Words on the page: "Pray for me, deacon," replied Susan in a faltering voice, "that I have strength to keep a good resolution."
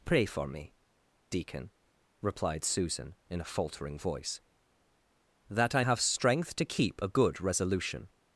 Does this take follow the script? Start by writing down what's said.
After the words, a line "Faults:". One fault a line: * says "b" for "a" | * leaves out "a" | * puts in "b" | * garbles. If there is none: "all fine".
"Pray for me, deacon," replied Susan in a faltering voice, "that I have strength to keep a good resolution."
Faults:
all fine